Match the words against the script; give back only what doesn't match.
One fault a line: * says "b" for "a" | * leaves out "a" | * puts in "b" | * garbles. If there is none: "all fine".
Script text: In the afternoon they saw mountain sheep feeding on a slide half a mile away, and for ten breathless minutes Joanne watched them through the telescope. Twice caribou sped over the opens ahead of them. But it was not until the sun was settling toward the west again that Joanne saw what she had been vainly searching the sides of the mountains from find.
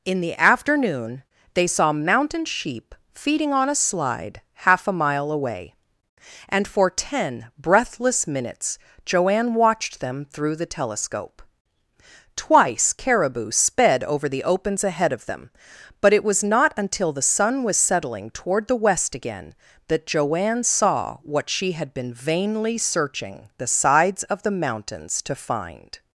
* says "to" for "from"